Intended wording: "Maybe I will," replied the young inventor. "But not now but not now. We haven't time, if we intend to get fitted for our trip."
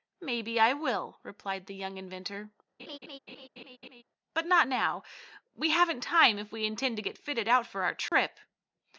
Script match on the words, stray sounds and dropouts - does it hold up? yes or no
no